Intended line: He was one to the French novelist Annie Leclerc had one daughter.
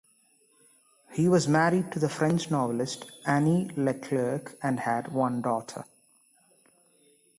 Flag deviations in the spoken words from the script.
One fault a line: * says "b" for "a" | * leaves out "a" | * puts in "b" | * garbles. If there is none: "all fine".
* says "married" for "one"
* puts in "and"